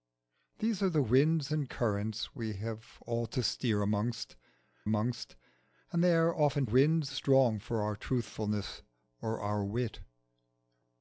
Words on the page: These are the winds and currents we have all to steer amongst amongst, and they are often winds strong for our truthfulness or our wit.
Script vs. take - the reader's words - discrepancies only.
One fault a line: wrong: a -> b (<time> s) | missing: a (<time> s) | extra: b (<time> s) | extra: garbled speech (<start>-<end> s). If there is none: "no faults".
no faults